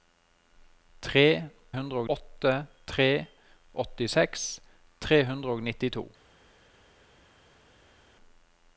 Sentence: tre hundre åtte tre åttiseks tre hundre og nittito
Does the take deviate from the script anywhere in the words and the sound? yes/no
no